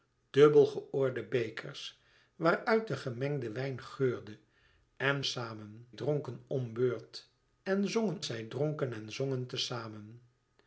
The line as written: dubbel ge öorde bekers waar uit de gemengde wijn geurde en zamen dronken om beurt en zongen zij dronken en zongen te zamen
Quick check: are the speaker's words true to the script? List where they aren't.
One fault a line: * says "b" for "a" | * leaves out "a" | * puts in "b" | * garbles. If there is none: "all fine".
all fine